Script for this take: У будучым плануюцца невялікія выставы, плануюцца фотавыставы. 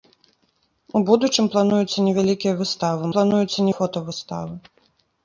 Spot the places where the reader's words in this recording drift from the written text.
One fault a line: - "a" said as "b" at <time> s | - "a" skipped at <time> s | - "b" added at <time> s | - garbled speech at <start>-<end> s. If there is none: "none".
none